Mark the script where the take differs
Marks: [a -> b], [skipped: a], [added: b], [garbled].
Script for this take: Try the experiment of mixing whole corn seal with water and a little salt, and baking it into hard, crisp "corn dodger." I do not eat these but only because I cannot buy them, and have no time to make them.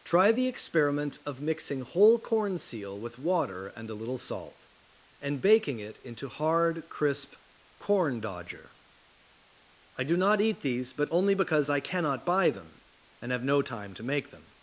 Try the experiment of mixing whole corn seal with water and a little salt, and baking it into hard, crisp "corn dodger." I do not eat these but only because I cannot buy them, and have no time to make them.